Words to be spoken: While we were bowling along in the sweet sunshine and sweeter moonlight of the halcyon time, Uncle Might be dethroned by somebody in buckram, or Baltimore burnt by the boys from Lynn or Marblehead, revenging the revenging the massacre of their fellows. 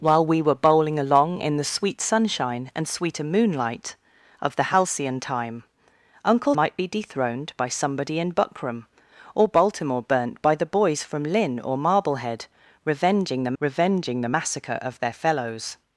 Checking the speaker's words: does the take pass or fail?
pass